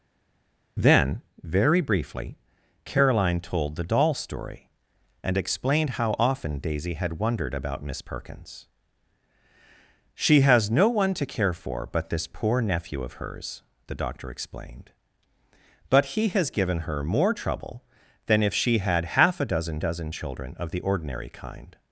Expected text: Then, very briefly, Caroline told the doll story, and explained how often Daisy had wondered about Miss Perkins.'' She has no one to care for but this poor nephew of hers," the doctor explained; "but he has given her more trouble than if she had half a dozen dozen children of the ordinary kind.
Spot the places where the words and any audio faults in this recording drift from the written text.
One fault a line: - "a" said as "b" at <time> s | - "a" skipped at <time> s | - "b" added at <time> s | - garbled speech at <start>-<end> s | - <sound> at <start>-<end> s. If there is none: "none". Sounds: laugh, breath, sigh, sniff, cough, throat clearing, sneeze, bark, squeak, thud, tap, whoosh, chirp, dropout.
none